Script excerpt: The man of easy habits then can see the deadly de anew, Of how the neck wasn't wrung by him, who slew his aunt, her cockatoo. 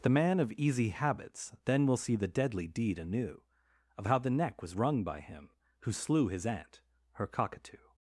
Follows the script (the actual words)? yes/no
no